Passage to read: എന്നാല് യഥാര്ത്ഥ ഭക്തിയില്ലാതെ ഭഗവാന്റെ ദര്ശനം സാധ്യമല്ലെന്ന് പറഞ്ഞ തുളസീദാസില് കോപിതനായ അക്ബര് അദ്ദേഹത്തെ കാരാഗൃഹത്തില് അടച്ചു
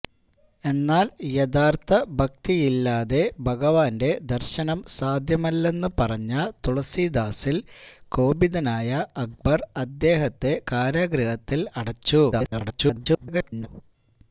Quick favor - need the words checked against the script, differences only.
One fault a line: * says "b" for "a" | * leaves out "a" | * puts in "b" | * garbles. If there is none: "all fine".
* garbles